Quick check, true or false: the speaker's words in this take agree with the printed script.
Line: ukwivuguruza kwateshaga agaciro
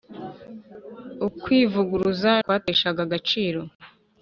true